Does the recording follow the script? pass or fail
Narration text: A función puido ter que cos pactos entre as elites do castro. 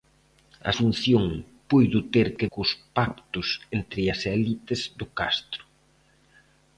pass